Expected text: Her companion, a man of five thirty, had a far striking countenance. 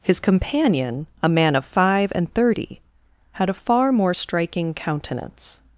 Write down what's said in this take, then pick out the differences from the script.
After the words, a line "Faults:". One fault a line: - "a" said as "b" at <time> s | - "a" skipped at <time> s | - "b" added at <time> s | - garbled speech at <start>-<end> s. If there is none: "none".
His companion, a man of five and thirty, had a far more striking countenance.
Faults:
- "Her" said as "His" at 0.0 s
- "and" added at 2.1 s
- "more" added at 3.9 s